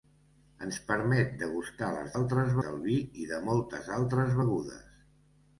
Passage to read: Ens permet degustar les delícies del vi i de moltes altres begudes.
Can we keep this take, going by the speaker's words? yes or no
no